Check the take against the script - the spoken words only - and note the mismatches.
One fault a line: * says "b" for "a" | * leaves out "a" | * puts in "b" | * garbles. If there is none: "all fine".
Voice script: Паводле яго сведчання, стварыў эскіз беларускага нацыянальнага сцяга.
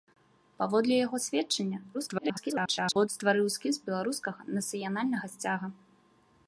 * garbles